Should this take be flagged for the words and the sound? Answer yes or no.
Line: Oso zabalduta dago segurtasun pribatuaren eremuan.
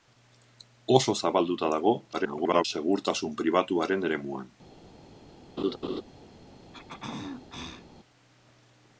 yes